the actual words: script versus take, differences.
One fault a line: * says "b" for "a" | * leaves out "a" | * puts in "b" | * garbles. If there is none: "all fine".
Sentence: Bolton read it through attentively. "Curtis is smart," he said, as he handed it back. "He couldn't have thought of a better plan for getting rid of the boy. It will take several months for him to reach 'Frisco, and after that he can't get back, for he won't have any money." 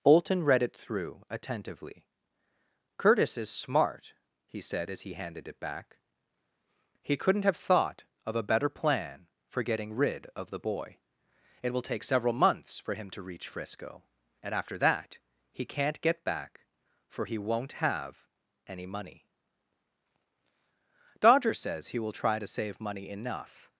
* puts in "Dodger says he will try to save money enough"